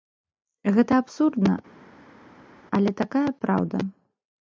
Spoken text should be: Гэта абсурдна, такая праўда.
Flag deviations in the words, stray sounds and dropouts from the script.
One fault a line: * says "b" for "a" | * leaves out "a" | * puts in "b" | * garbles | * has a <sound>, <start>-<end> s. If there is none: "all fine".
* puts in "але"